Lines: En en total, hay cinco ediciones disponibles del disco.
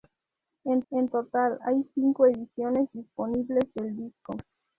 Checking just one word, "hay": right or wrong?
right